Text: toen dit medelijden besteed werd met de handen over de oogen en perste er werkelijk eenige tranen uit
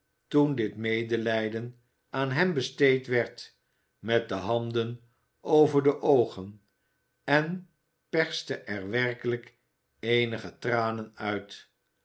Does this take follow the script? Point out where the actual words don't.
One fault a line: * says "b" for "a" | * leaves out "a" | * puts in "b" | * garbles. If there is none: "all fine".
* puts in "aan hem"